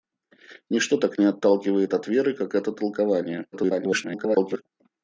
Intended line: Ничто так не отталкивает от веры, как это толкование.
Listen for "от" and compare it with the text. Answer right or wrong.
right